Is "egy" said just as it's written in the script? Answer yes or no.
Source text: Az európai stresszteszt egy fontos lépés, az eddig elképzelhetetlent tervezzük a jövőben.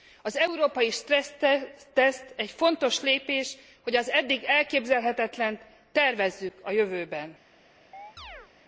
yes